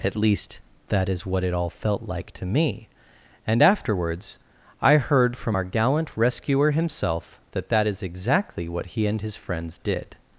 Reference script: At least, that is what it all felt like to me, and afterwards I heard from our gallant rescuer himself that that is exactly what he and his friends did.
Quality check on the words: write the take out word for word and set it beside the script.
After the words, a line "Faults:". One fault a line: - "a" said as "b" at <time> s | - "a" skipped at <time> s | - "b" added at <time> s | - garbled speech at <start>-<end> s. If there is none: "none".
At least, that is what it all felt like to me, and afterwards I heard from our gallant rescuer himself that that is exactly what he and his friends did.
Faults:
none